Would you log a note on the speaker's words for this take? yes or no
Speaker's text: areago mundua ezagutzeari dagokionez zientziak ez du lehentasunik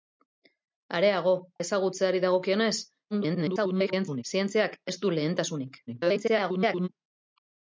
yes